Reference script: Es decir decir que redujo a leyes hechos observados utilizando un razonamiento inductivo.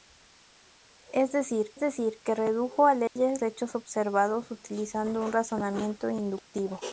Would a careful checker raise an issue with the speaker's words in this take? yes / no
no